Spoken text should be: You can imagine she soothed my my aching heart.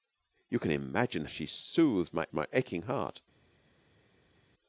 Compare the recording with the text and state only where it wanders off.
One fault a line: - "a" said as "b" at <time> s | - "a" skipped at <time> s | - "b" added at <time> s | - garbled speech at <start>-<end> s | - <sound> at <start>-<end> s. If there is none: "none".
none